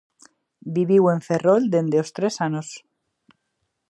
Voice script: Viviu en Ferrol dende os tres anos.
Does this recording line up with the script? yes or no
yes